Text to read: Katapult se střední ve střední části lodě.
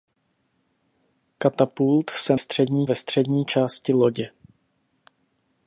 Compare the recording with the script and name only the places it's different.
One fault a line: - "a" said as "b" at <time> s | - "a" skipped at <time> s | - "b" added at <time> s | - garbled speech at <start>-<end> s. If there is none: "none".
none